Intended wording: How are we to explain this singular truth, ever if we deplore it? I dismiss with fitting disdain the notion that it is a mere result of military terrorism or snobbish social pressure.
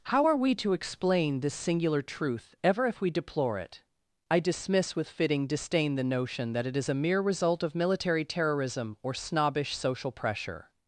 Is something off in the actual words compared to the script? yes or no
no